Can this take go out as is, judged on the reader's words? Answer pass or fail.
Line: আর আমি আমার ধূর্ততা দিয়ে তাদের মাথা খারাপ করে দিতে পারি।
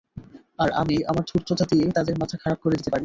pass